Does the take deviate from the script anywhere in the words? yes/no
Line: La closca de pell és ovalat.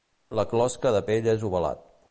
no